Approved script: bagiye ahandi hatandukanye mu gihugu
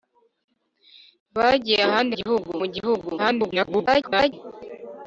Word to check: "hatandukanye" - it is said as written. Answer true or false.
false